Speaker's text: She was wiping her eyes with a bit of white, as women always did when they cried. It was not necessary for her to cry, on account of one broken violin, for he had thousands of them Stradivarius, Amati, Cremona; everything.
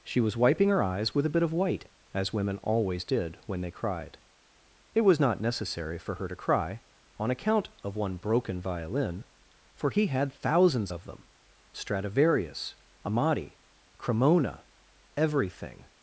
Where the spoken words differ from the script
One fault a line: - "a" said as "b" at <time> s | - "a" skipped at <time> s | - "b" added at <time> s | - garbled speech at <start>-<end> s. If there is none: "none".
none